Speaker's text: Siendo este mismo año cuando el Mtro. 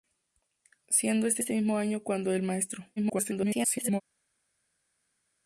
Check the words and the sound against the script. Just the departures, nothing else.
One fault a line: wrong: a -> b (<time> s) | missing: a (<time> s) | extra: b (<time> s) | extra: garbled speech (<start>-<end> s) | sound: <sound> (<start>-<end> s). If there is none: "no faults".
extra: este (1.4 s)
extra: garbled speech (3.0-4.0 s)